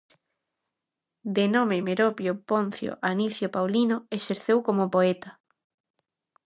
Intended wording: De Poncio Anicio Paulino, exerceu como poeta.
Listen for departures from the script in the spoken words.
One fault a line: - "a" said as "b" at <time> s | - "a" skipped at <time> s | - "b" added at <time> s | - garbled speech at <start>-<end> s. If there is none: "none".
- "nome Meropio" added at 1.5 s